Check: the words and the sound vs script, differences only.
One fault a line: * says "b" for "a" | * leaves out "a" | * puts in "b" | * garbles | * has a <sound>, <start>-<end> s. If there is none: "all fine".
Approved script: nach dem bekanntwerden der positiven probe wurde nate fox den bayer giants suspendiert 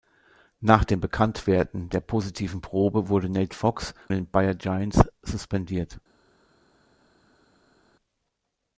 all fine